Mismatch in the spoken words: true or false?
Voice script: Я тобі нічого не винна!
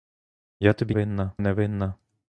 true